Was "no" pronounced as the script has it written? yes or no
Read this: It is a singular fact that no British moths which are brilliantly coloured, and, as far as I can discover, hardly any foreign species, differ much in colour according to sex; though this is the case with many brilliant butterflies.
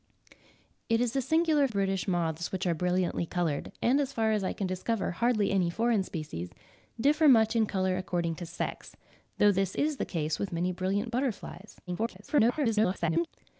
no